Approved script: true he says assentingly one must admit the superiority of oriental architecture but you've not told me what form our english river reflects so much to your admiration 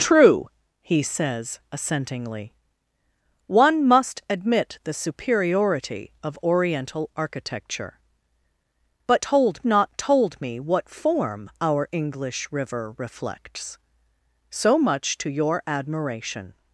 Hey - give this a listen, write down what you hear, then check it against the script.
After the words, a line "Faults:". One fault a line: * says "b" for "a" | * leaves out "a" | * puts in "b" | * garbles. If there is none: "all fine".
true he says assentingly one must admit the superiority of oriental architecture but told not told me what form our english river reflects so much to your admiration
Faults:
* says "told" for "you've"